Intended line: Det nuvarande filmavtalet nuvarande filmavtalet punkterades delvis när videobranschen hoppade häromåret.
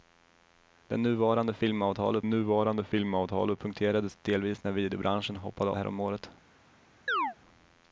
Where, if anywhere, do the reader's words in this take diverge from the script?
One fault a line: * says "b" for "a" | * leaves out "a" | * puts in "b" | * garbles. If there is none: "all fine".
all fine